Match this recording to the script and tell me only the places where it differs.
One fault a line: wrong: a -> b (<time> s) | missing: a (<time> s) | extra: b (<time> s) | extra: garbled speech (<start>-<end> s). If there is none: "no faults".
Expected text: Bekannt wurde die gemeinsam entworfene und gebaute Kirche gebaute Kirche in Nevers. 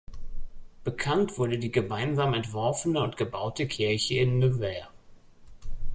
missing: gebaute Kirche (4.2 s)